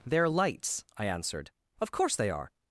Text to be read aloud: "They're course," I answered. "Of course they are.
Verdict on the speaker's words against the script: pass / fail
fail